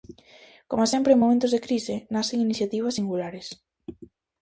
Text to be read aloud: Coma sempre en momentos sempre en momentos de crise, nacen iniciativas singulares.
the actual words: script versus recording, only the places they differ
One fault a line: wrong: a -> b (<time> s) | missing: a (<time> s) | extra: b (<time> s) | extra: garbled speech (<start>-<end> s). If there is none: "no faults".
missing: sempre en momentos (1.5 s)